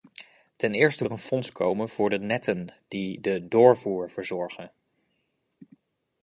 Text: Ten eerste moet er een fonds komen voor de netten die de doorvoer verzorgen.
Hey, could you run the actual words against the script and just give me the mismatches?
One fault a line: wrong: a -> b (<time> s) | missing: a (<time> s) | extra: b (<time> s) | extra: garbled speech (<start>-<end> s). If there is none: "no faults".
missing: moet (1.1 s)